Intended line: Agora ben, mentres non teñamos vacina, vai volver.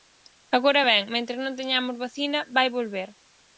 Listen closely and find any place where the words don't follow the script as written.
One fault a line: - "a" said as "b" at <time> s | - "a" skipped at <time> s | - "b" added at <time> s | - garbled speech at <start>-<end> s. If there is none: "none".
none